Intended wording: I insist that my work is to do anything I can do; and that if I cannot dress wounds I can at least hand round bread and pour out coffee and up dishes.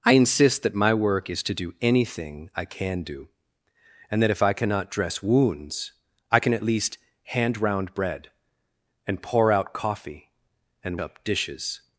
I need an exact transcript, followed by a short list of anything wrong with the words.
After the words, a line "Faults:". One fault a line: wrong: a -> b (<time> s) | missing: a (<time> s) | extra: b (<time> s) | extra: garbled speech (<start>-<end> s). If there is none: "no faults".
I insist that my work is to do anything I can do; and that if I cannot dress wounds I can at least hand round bread and pour out coffee and up dishes.
Faults:
no faults